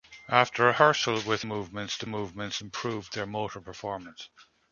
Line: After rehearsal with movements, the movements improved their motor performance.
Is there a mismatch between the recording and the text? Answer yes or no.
no